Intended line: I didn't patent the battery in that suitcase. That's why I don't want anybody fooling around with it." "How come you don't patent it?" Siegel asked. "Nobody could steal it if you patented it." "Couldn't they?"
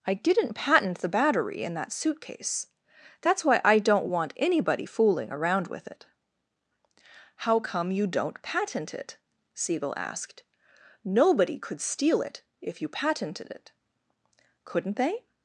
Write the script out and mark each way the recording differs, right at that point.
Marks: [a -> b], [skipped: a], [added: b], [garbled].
I didn't patent the battery in that suitcase. That's why I don't want anybody fooling around with it." "How come you don't patent it?" Siegel asked. "Nobody could steal it if you patented it." "Couldn't they?"